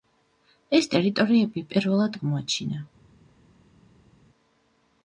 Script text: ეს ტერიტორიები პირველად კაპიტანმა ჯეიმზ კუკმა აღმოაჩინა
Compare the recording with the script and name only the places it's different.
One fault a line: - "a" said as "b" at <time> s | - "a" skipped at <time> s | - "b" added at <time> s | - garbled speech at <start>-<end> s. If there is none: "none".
- "კაპიტანმა ჯეიმზ კუკმა" skipped at 2.2 s